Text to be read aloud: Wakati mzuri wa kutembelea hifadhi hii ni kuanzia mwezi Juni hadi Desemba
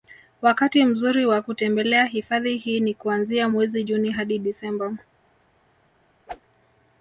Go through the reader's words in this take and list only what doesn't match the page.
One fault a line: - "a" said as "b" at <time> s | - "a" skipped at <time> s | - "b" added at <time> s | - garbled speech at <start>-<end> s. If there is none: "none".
none